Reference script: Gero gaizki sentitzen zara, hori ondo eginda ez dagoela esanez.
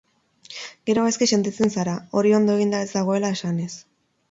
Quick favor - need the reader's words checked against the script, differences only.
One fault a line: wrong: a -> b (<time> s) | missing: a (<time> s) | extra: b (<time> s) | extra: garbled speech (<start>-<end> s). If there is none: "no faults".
no faults